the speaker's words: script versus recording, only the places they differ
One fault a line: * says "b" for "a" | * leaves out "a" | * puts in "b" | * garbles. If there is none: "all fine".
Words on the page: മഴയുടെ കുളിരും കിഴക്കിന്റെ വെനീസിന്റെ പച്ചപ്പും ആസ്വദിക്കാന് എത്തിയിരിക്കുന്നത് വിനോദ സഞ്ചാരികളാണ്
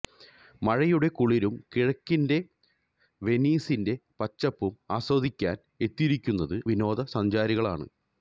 all fine